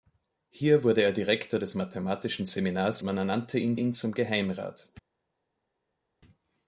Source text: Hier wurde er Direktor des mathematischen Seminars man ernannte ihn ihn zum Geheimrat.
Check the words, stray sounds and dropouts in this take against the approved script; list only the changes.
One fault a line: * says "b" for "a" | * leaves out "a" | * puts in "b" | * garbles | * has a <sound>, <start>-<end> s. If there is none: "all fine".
all fine